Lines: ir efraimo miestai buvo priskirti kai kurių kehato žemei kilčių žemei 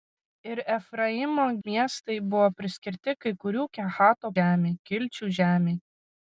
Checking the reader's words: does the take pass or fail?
pass